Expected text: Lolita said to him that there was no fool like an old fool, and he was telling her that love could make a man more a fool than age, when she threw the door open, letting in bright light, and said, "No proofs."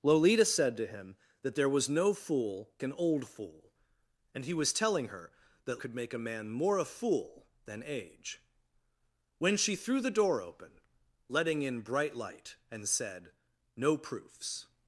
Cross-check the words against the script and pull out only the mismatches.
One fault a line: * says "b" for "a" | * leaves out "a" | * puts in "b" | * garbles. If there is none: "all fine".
* leaves out "like"
* leaves out "love"